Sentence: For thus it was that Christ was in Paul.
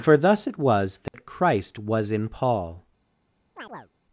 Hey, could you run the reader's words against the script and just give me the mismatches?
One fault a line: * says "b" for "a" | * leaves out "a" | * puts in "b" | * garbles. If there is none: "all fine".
all fine